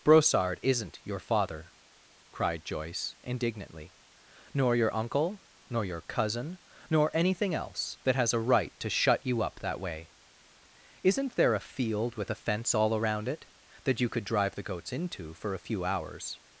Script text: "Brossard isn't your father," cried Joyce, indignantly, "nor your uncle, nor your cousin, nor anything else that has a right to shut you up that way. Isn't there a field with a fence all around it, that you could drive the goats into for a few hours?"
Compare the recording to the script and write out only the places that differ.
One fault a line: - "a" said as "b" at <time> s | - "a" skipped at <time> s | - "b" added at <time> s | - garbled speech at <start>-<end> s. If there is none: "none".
none